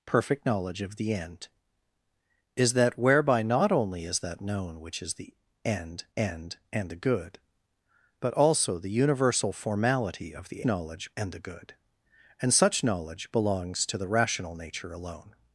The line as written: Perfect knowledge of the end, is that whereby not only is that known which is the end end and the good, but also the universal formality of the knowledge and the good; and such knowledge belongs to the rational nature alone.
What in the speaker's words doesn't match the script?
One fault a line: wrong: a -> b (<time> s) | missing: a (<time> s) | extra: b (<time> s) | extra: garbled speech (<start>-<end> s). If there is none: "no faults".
no faults